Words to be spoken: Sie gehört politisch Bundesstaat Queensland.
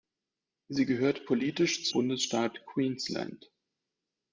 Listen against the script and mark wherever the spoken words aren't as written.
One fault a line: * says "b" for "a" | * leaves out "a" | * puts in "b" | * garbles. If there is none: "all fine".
all fine